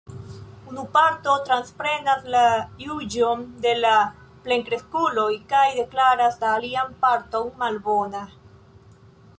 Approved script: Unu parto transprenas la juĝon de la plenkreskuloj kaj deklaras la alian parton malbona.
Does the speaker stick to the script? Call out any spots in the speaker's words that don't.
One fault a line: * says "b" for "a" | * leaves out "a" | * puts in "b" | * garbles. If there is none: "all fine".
all fine